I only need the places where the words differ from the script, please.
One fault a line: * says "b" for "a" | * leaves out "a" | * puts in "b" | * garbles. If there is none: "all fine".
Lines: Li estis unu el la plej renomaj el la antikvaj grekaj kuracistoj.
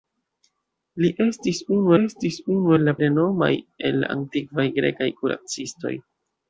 * puts in "estis unu"
* leaves out "plej"